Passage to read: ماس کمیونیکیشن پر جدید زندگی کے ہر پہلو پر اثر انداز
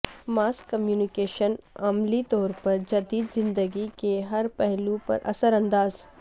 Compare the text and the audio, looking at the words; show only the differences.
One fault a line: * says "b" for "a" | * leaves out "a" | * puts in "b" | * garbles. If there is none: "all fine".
* puts in "عملی طور"